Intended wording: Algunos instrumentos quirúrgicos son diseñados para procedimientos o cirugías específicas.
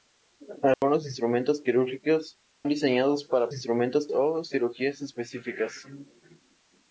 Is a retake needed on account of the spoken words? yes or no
yes